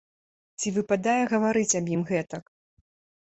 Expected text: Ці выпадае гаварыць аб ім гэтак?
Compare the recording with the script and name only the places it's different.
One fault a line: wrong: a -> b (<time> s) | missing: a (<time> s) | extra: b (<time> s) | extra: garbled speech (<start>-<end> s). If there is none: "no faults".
no faults